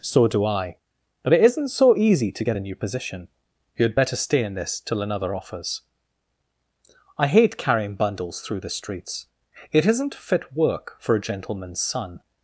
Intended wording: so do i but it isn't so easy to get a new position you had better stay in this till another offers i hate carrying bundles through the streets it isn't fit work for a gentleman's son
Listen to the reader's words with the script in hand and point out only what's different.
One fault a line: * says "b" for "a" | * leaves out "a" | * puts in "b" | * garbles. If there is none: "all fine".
all fine